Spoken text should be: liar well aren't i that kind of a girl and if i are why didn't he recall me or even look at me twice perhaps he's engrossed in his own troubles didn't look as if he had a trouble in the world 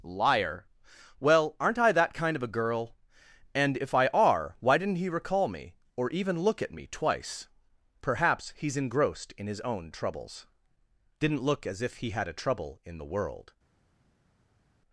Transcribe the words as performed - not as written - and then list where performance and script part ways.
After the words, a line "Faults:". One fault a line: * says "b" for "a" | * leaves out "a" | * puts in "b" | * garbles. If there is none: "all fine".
liar well aren't i that kind of a girl and if i are why didn't he recall me or even look at me twice perhaps he's engrossed in his own troubles didn't look as if he had a trouble in the world
Faults:
all fine